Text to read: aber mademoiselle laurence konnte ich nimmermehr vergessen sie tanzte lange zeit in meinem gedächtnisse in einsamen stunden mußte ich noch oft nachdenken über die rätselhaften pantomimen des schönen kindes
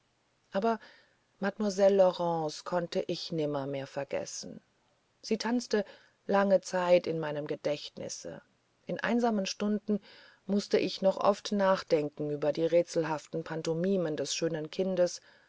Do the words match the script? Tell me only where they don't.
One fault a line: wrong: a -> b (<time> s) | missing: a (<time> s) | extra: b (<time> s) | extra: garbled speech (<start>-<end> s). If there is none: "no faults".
no faults